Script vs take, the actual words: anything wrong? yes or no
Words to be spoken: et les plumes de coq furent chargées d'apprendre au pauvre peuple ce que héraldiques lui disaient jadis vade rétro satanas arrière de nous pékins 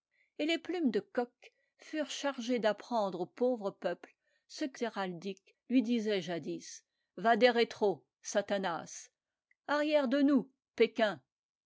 no